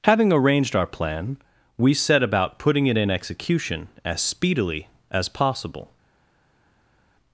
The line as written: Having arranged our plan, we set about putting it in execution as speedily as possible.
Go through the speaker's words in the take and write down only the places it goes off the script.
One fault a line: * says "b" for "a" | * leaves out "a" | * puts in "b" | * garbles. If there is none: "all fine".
all fine